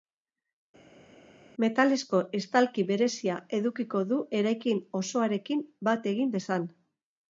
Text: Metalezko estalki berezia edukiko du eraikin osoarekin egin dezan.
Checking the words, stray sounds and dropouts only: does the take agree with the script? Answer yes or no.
no